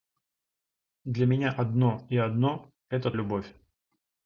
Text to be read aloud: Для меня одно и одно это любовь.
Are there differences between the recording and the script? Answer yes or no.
no